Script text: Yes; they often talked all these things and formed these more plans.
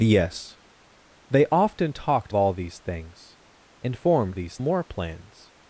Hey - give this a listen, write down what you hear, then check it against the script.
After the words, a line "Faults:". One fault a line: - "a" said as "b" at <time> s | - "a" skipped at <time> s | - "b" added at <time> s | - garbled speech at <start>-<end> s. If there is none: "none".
Yes; they often talked all these things and formed these more plans.
Faults:
none